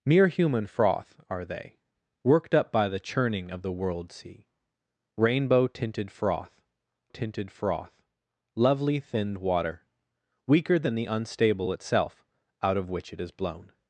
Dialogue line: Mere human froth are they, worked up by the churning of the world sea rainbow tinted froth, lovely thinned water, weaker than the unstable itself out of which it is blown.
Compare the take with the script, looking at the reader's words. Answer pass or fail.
fail